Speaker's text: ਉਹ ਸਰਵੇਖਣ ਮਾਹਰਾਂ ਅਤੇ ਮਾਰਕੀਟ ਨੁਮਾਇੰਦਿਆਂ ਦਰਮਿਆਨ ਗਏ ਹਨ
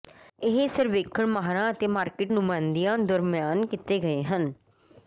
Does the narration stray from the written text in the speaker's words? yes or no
yes